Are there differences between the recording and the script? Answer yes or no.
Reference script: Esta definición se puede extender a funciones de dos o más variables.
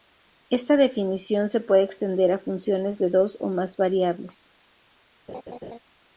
no